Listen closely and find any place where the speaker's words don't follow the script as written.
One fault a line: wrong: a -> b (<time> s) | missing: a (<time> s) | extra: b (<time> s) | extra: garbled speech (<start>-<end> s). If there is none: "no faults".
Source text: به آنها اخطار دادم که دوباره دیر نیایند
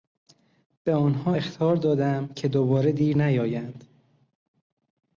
no faults